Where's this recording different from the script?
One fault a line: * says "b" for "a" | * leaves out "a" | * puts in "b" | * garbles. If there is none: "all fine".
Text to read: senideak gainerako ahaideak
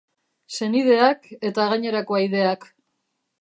* puts in "eta"